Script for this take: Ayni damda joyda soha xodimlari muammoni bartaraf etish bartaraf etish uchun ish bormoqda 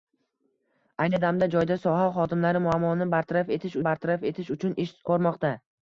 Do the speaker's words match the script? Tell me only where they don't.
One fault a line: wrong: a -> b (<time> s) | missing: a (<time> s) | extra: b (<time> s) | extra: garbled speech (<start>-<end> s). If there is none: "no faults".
no faults